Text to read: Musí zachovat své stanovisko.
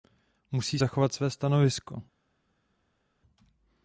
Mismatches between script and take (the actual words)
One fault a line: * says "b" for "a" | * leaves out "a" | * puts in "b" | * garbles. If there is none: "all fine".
all fine